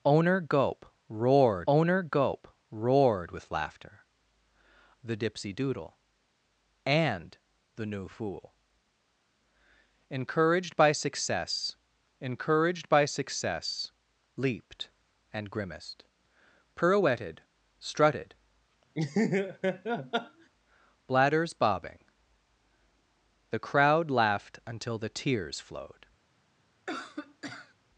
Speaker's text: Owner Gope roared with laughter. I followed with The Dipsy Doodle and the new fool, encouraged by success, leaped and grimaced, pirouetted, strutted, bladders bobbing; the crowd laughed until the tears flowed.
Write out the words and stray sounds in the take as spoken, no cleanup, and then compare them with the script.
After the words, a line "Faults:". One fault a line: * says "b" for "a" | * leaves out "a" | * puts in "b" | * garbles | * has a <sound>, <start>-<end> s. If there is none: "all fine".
Owner Gope roared owner Gope roared with laughter. The Dipsy Doodle and the new fool, encouraged by success encouraged by success, leaped and grimaced, pirouetted, strutted, bladders bobbing; the crowd laughed until the tears flowed.
Faults:
* says "owner Gope roared with laughter" for "with laughter I followed with"
* puts in "encouraged by success"
* has a laugh, 18.9-20.5 s
* has a cough, 26.9-27.7 s